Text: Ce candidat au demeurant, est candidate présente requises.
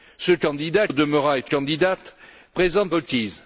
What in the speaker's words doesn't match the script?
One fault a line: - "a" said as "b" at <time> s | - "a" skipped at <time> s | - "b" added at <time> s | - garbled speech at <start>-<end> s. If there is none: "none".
none